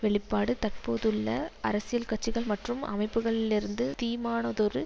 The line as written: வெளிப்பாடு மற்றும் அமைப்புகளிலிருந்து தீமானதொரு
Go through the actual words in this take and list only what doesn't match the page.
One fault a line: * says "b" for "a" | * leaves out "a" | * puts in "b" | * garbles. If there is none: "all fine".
* puts in "தற்போதுள்ள அரசியல் கட்சிகள்"